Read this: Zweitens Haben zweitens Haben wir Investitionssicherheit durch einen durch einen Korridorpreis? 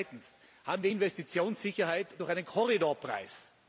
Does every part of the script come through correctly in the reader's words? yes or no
no